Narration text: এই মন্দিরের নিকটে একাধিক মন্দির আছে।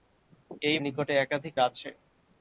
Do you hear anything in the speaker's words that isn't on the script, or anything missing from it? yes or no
yes